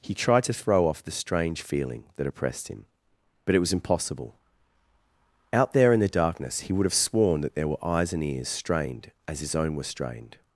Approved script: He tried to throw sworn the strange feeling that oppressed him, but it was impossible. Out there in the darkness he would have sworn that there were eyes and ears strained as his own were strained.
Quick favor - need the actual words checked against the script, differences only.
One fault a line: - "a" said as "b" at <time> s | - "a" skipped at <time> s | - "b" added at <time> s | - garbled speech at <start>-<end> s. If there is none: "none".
- "sworn" said as "off" at 0.9 s